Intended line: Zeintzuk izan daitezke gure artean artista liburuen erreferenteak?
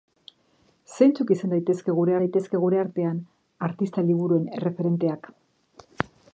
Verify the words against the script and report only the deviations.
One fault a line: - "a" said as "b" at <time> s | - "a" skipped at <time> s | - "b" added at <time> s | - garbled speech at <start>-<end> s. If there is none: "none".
- "daitezke gure" added at 2.2 s